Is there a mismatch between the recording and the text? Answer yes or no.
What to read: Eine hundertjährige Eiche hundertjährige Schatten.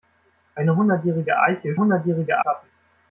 no